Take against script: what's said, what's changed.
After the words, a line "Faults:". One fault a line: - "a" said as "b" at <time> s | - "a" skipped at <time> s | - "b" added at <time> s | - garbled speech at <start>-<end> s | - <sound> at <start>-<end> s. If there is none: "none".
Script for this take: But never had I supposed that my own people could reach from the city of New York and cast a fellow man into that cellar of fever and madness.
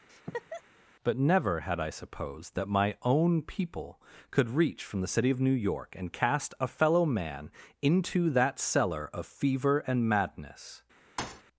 But never had I supposed that my own people could reach from the city of New York and cast a fellow man into that cellar of fever and madness.
Faults:
- laugh at 0.1-0.6 s
- thud at 11.2-11.4 s